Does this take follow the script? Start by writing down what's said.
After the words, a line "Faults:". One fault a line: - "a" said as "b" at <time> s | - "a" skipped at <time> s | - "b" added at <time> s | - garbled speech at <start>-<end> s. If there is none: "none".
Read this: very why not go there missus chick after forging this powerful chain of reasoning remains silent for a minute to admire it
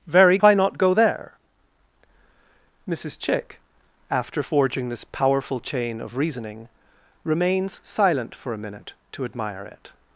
very why not go there missus chick after forging this powerful chain of reasoning remains silent for a minute to admire it
Faults:
none